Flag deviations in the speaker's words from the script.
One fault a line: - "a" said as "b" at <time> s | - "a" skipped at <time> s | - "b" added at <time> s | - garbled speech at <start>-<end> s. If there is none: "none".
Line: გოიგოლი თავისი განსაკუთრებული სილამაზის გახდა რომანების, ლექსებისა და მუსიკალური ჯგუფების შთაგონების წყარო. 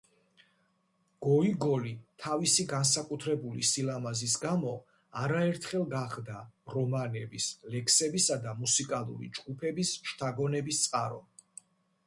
- "გამო არაერთხელ" added at 4.5 s